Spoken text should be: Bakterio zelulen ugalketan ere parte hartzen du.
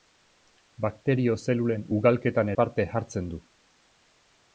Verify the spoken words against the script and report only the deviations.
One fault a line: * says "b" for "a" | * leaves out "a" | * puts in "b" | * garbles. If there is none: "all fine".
* leaves out "ere"